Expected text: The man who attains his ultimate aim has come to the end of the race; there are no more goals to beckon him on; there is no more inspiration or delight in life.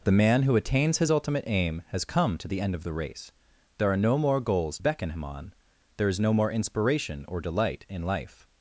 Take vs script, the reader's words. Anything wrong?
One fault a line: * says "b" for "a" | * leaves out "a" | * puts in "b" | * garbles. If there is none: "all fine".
* leaves out "to"